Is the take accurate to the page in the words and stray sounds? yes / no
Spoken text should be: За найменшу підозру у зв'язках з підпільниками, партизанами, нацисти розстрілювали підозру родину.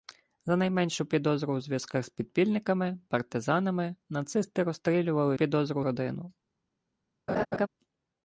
no